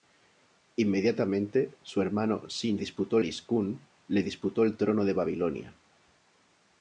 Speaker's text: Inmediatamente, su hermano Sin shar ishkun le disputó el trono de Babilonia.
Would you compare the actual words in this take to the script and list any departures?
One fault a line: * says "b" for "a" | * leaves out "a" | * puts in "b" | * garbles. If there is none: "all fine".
* says "disputó" for "shar"